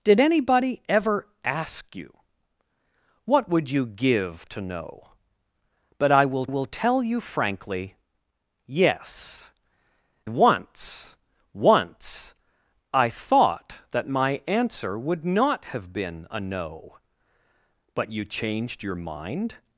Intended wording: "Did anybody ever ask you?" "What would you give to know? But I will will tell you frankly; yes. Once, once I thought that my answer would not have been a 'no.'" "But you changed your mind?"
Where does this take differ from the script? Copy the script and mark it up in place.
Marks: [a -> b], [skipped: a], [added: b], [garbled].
"Did anybody ever ask you?" "What would you give to know? But I will will tell you frankly; yes. Once, once I thought that my answer would not have been a 'no.'" "But you changed your mind?"